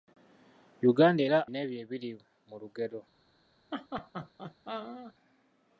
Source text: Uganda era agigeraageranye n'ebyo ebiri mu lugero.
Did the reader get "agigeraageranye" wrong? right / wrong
wrong